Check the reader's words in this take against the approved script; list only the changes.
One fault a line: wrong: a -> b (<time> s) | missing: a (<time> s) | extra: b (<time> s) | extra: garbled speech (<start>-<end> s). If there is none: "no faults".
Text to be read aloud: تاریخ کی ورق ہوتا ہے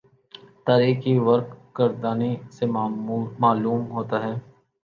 extra: گردانی سے معلوم (1.8 s)